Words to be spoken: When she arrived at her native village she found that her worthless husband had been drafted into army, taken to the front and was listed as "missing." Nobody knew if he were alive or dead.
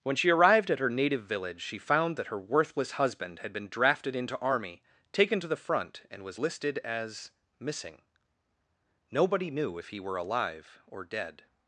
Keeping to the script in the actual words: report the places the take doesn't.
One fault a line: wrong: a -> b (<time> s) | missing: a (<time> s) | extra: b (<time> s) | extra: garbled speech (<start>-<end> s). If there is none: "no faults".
no faults